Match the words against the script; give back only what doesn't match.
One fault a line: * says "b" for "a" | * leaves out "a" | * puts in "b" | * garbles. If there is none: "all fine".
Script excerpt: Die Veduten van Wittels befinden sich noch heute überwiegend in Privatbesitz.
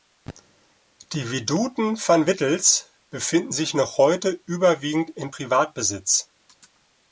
all fine